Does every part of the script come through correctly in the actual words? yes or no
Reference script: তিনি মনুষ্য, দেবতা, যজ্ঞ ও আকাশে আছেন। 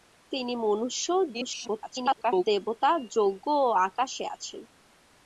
no